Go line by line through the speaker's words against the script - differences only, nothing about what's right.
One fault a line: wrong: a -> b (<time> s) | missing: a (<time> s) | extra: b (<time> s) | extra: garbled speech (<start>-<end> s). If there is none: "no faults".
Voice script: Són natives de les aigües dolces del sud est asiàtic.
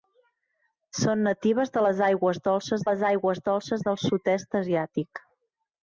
extra: les aigües dolces (2.9 s)